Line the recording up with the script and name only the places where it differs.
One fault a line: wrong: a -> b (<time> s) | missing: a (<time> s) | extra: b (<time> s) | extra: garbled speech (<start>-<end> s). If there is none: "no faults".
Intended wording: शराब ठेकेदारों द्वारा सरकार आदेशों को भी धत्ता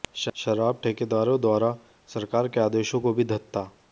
extra: के (2.5 s)